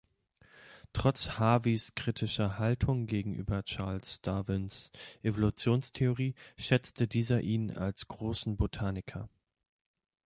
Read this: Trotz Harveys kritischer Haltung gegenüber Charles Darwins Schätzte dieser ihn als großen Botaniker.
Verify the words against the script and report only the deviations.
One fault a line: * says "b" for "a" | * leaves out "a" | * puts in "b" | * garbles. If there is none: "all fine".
* puts in "Evolutionstheorie"